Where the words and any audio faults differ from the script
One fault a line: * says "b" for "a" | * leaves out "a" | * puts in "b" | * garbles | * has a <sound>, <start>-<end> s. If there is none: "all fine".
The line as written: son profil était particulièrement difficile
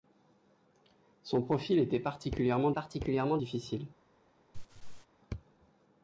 * puts in "particulièrement"
* has a laugh, 4.5-5.1 s